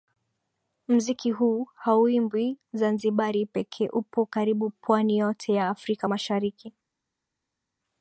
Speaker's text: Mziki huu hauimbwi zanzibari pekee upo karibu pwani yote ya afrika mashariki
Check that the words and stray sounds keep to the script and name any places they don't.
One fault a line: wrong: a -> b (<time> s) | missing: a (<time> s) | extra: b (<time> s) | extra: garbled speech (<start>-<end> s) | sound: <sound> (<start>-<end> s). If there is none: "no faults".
no faults